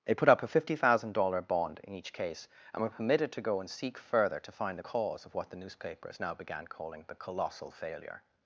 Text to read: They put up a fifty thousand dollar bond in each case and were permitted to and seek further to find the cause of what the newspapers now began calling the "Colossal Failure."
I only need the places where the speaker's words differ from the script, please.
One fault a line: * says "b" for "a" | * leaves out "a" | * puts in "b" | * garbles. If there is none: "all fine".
* puts in "go"